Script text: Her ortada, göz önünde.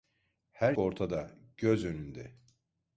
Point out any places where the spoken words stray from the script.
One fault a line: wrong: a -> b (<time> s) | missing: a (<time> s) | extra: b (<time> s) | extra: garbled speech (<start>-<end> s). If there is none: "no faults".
no faults